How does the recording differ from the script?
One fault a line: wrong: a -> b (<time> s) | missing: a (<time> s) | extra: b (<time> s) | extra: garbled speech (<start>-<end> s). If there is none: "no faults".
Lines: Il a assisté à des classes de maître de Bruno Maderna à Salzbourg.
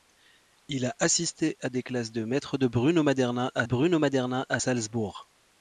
extra: Bruno Maderna à (3.6 s)